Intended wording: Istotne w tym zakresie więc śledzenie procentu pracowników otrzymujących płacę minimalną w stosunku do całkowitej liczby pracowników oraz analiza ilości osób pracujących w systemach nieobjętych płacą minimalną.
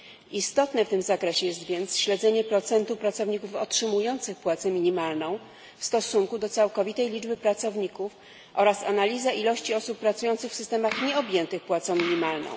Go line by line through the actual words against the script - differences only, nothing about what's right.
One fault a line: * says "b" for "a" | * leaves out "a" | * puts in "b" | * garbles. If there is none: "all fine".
* puts in "jest"